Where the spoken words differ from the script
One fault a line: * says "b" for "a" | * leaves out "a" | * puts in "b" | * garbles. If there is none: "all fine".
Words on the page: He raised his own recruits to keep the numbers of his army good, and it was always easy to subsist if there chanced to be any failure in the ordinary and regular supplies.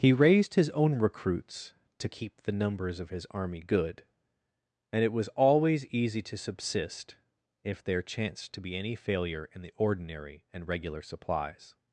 all fine